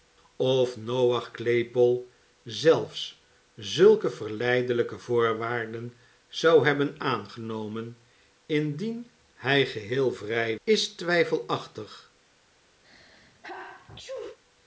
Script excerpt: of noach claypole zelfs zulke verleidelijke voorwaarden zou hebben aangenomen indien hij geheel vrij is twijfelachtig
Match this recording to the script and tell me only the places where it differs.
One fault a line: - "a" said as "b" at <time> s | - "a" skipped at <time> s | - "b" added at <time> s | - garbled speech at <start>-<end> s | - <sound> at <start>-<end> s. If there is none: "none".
- sneeze at 12.8-14.4 s